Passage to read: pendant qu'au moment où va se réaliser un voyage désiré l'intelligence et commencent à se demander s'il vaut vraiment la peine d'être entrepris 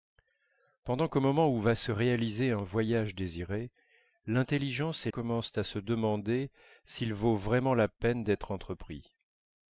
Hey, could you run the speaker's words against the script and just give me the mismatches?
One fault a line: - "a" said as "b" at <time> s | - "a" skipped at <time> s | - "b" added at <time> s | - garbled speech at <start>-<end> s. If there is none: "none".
none